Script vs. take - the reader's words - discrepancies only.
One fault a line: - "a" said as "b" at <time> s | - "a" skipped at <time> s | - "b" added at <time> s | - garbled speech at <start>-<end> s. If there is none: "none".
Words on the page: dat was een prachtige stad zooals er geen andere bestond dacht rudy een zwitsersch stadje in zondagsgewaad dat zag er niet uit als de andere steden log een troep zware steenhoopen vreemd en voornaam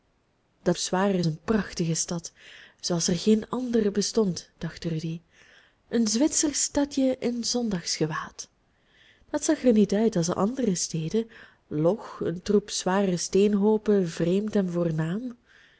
- "was" said as "zware" at 0.8 s